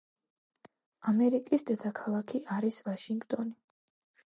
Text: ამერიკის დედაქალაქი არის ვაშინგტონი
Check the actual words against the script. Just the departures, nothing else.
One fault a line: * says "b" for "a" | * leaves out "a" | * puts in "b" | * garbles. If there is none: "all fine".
all fine